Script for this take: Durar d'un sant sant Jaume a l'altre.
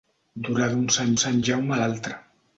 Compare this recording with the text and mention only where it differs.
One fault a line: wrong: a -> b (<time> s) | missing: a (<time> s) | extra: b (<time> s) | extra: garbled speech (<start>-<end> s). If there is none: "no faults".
no faults